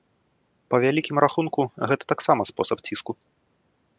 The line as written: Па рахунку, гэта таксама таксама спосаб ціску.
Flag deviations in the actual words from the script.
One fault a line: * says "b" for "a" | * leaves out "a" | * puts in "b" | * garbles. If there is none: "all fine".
* puts in "вялікім"
* leaves out "таксама"